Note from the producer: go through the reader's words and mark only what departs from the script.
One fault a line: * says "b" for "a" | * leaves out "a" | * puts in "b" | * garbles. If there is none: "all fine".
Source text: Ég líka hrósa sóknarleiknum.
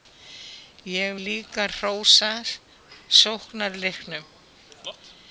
all fine